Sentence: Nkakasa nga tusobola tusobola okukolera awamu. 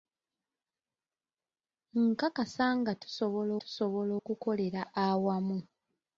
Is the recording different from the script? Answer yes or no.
no